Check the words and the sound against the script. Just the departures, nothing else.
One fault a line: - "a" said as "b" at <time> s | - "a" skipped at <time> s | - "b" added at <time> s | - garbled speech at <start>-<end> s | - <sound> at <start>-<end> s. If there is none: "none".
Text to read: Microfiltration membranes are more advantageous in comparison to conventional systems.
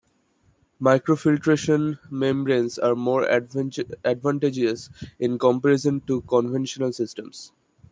none